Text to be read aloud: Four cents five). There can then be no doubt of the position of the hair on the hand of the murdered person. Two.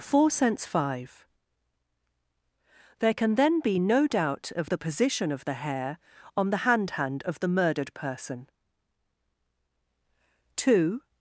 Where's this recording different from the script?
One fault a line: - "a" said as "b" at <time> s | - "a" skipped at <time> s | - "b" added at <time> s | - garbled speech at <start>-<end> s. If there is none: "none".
- "hand" added at 6.9 s